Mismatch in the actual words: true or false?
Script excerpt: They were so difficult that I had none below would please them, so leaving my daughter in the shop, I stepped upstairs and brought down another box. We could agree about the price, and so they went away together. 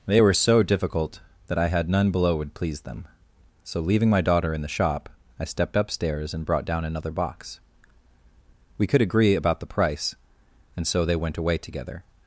false